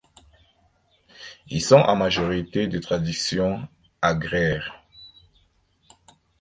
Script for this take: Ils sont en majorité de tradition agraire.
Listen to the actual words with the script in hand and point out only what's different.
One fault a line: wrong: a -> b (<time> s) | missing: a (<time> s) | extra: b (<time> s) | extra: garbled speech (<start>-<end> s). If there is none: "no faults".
no faults